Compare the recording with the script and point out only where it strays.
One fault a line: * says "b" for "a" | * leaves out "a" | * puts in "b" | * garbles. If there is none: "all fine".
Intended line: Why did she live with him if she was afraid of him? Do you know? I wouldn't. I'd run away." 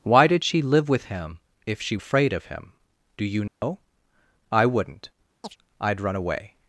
* leaves out "was"